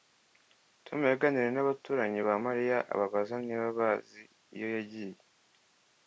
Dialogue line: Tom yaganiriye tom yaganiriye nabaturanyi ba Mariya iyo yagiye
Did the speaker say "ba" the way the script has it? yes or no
yes